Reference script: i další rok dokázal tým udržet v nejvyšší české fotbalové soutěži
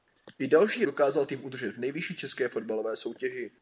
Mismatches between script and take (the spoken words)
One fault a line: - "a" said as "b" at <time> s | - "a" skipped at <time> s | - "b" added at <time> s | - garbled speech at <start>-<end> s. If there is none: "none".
- "rok" skipped at 0.8 s